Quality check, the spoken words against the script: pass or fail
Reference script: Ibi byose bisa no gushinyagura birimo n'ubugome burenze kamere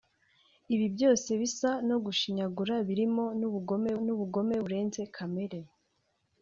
fail